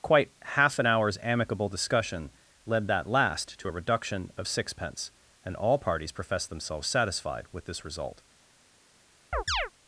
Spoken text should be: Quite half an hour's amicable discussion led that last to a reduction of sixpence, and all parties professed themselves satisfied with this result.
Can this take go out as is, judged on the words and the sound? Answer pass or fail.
fail